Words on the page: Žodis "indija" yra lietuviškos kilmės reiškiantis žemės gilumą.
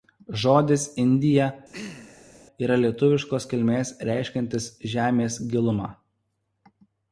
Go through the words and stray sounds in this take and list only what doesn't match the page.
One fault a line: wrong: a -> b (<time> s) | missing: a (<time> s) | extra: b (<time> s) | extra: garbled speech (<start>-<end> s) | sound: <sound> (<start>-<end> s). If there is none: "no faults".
sound: throat clearing (1.7-2.4 s)